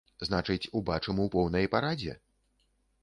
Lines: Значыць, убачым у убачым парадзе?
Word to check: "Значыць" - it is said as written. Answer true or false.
true